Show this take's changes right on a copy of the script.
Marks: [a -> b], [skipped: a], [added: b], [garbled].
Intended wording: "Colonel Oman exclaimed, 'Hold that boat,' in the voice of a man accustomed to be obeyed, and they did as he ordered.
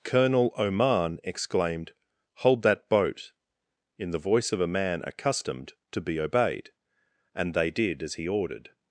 "Colonel Oman exclaimed, 'Hold that boat,' in the voice of a man accustomed to be obeyed, and they did as he ordered.